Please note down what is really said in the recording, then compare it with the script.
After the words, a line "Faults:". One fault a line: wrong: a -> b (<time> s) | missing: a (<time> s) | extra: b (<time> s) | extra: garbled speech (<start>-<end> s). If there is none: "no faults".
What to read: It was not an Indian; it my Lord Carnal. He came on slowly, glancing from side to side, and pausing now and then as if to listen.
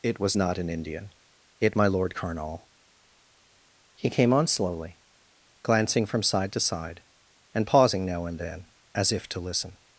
It was not an Indian; it my Lord Carnal. He came on slowly, glancing from side to side, and pausing now and then as if to listen.
Faults:
no faults